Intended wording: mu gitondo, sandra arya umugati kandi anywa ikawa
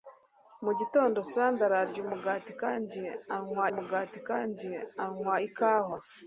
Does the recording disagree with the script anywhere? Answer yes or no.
yes